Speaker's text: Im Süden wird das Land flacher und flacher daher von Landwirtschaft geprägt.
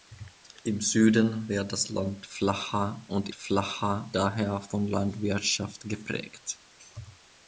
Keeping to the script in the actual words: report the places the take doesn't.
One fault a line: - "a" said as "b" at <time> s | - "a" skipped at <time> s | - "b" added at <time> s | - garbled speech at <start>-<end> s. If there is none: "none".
none